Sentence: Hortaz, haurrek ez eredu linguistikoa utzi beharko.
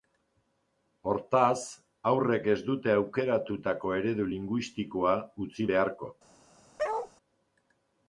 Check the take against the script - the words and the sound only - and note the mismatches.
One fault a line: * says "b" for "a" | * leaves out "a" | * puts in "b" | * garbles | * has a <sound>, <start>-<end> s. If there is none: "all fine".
* puts in "dute aukeratutako"
* has a bark, 6.8-7.1 s